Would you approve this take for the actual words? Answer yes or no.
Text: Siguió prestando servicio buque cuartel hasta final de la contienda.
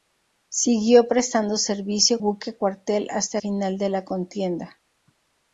yes